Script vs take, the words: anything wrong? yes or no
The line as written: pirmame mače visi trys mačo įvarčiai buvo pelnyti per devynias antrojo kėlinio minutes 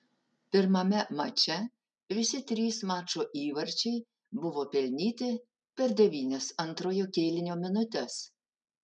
no